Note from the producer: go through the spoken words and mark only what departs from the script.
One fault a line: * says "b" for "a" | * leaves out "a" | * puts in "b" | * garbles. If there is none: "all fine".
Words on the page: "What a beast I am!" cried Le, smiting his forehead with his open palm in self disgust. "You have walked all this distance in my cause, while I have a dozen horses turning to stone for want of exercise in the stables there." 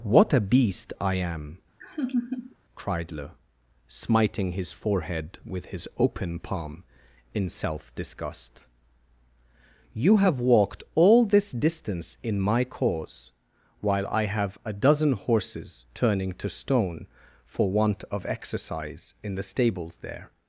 all fine